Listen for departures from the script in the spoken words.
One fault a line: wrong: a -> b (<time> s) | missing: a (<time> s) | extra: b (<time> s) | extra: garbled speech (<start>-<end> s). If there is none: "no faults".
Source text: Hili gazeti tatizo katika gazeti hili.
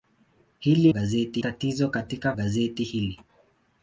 no faults